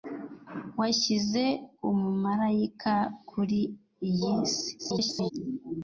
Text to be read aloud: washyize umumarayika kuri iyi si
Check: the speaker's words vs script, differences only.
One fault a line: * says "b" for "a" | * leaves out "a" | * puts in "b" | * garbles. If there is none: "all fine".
* garbles